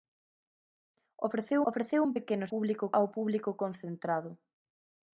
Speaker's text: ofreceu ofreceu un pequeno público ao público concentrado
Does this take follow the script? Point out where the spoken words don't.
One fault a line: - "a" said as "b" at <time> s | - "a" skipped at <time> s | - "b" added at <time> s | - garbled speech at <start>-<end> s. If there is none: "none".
none